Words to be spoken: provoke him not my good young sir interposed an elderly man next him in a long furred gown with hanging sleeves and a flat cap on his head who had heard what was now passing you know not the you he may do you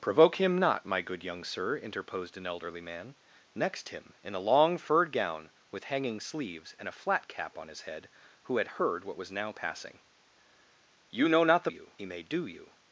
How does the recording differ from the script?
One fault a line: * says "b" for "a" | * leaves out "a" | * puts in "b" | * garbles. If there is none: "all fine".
all fine